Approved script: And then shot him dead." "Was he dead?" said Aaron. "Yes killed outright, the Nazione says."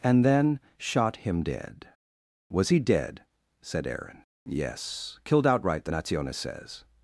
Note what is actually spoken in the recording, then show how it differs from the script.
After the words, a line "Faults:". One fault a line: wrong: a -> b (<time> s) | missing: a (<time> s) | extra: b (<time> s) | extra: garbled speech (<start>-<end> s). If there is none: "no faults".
And then shot him dead." "Was he dead?" said Aaron. "Yes killed outright, the Nazione says."
Faults:
no faults